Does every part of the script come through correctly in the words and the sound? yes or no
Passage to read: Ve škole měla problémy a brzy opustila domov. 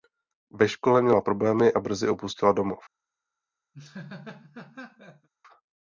no